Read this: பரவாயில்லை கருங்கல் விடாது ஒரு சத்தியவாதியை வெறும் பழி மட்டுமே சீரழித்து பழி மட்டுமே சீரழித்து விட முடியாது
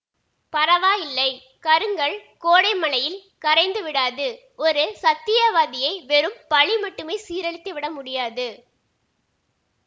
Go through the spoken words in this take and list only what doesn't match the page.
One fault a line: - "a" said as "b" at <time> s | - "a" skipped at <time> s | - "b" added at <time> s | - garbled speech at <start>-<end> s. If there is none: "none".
- "கோடை மழையில் கரைந்து" added at 2.4 s
- "பழி மட்டுமே சீரழித்து" skipped at 7.7 s